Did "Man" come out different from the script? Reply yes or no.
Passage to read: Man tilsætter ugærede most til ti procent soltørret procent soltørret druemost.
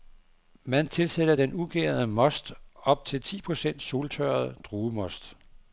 no